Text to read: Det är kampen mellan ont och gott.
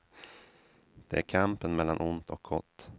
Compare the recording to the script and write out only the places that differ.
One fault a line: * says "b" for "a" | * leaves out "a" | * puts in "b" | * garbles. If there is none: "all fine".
all fine